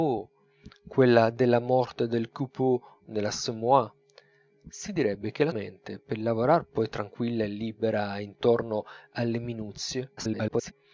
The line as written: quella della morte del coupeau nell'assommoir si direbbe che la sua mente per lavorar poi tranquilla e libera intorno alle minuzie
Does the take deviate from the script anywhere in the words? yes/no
yes